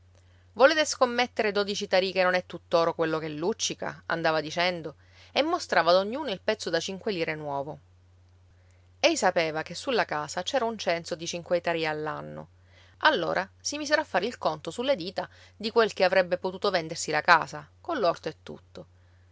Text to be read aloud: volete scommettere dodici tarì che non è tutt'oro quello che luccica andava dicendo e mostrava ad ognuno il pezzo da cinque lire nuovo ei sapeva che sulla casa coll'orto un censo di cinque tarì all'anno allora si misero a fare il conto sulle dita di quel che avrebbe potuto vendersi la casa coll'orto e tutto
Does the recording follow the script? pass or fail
fail